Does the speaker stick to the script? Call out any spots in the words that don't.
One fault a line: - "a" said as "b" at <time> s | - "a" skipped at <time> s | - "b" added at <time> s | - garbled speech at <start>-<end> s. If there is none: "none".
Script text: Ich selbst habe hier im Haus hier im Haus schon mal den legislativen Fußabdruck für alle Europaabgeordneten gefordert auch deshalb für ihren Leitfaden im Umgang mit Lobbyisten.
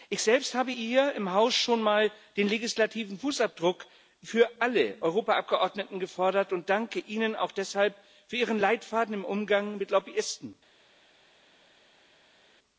- "hier im Haus" skipped at 1.5 s
- "und danke Ihnen" added at 6.5 s